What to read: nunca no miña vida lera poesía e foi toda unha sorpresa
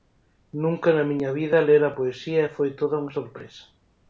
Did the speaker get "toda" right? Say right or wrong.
right